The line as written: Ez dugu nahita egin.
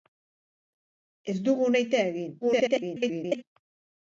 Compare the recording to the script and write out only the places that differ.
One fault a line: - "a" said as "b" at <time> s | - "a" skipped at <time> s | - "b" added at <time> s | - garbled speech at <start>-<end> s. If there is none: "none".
- garbled speech at 2.4-3.4 s